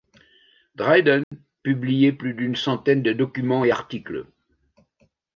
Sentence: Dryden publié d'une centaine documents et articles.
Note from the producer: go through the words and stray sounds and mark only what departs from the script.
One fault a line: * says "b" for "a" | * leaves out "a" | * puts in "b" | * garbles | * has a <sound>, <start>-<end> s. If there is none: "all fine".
* has a dropout, 1.2-1.3 s
* puts in "plus"
* puts in "de"